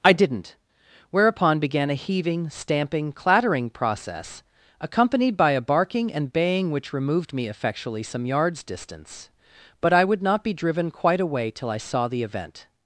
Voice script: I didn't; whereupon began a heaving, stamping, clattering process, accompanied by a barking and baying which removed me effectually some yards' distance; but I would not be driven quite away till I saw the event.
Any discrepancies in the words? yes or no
no